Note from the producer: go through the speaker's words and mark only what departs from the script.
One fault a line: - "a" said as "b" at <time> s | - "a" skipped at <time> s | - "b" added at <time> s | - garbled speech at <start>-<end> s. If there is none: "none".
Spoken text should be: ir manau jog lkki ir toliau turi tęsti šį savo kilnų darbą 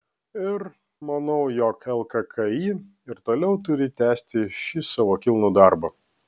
none